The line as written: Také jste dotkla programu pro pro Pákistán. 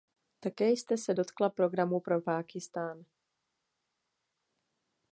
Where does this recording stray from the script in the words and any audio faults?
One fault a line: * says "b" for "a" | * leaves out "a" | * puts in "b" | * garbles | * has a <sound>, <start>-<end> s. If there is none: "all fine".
* puts in "se"
* leaves out "pro"